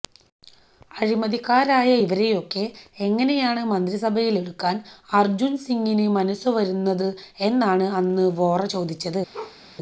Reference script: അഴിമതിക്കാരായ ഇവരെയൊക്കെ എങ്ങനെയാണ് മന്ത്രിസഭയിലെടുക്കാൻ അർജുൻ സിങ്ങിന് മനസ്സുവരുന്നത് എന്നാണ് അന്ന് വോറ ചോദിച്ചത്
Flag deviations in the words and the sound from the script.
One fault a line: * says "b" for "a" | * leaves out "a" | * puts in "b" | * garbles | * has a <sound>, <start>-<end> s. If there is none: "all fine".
* has a bark, 9.3-9.6 s